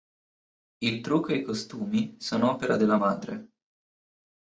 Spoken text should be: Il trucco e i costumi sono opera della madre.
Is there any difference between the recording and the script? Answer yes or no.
no